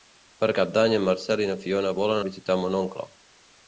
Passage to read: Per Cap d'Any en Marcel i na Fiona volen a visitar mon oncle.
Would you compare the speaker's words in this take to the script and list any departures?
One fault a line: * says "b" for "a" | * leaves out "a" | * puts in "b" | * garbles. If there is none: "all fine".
all fine